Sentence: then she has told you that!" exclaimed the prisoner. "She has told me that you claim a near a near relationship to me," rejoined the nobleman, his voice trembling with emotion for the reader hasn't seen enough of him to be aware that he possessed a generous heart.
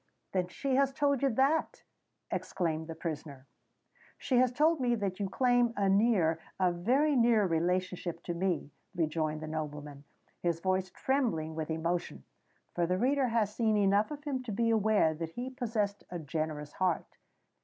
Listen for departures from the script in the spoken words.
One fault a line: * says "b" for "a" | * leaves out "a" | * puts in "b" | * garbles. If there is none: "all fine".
* puts in "very"
* says "has" for "hasn't"